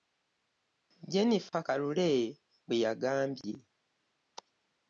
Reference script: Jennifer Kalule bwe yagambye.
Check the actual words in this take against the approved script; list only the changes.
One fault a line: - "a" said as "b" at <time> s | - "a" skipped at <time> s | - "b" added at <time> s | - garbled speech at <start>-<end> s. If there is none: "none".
none